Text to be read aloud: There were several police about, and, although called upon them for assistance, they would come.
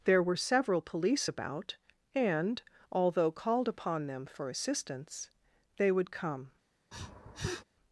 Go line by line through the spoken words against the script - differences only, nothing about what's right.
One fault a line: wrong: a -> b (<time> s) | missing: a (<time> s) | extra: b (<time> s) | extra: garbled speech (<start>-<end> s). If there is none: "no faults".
no faults